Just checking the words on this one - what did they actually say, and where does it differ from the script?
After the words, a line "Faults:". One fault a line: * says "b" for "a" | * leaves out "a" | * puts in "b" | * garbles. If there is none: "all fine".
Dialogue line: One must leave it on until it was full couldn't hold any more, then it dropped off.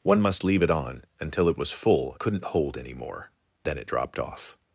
One must leave it on until it was full couldn't hold any more, then it dropped off.
Faults:
all fine